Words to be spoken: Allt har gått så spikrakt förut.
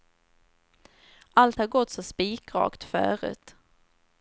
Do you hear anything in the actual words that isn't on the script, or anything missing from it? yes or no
no